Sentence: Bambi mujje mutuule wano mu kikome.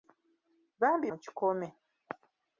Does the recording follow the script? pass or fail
fail